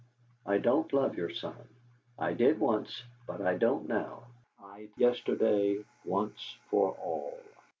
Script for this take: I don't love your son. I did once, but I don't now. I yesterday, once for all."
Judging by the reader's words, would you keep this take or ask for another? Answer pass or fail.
pass